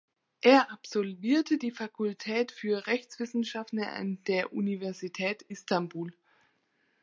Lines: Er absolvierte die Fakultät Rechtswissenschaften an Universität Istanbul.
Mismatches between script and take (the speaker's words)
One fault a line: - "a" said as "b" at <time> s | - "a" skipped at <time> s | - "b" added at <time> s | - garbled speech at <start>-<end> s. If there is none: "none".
- "für" added at 2.5 s
- "der" added at 4.2 s